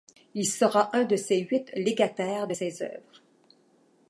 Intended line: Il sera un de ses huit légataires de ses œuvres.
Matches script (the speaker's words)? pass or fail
pass